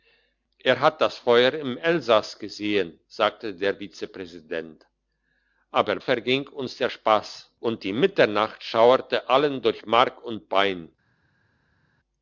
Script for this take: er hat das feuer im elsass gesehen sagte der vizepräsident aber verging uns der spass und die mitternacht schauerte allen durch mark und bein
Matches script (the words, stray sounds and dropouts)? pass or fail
pass